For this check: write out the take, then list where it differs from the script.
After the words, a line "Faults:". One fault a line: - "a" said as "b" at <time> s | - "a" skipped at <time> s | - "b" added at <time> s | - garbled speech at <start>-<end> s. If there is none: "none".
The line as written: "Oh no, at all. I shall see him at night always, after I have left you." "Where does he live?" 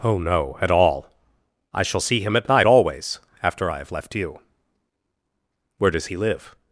"Oh no, at all. I shall see him at night always, after I have left you." "Where does he live?"
Faults:
none